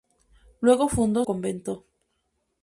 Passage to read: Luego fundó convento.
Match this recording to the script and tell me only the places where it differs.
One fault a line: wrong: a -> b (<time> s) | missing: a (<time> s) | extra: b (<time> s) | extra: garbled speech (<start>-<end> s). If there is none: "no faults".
no faults